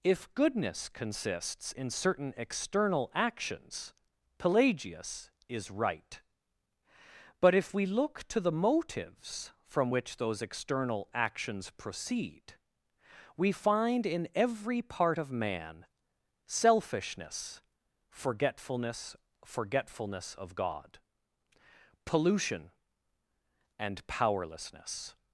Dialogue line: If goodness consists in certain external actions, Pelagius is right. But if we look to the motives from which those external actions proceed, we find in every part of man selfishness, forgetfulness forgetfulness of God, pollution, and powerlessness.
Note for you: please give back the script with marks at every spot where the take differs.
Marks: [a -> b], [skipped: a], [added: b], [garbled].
If goodness consists in certain external actions, Pelagius is right. But if we look to the motives from which those external actions proceed, we find in every part of man selfishness, forgetfulness forgetfulness of God, pollution, and powerlessness.